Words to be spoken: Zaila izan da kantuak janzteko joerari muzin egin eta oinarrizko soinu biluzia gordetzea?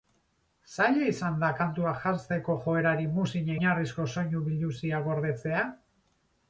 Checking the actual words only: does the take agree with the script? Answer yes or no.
no